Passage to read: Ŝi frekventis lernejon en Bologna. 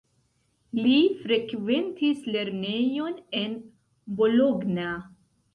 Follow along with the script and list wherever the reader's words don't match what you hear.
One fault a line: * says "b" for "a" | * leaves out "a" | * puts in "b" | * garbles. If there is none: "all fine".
* says "Li" for "Ŝi"